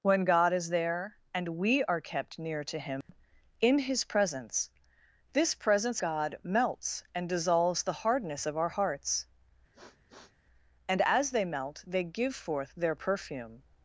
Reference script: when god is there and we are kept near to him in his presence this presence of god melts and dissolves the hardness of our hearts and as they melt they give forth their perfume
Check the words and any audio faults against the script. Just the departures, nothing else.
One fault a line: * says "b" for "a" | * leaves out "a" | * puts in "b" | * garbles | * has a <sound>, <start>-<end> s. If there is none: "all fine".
* has a dropout, 3.0-3.1 s
* leaves out "of"
* has a sniff, 9.7-10.4 s